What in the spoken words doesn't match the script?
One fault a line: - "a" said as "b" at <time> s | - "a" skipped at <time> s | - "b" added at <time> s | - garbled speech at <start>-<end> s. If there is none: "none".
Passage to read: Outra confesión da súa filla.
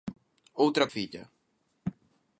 - "confesión da súa" skipped at 0.8 s